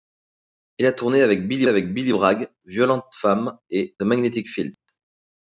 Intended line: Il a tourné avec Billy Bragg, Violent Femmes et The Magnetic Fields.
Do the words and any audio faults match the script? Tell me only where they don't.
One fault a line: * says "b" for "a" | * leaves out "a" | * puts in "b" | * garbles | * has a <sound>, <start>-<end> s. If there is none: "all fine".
* puts in "avec Billy"
* leaves out "The"
* has a dropout, 4.7-4.9 s